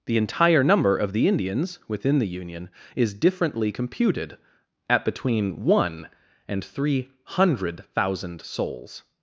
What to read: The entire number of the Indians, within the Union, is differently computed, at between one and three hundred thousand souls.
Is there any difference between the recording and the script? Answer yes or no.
no